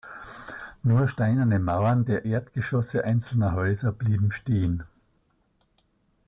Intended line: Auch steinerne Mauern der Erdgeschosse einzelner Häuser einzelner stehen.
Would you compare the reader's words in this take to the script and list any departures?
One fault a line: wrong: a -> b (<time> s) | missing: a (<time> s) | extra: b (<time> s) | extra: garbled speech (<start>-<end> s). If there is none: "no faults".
wrong: Auch -> Nur (0.8 s)
wrong: einzelner -> blieben (3.9 s)